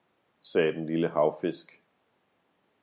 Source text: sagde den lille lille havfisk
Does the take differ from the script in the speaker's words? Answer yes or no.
yes